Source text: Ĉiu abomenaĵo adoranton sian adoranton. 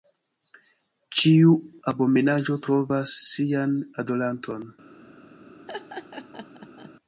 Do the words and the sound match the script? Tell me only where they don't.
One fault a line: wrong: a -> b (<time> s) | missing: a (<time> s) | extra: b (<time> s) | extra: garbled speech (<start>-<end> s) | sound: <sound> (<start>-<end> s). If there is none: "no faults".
wrong: adoranton -> trovas (2.7 s)
sound: laugh (5.7-6.9 s)